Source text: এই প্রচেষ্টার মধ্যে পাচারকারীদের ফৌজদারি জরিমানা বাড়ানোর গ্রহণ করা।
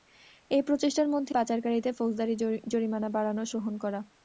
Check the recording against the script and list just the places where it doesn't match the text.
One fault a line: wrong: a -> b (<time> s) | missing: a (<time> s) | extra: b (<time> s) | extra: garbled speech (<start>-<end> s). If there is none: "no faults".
no faults